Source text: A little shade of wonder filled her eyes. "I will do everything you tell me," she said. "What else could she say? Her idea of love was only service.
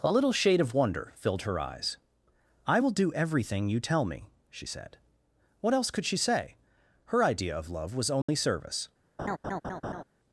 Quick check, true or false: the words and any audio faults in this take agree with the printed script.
false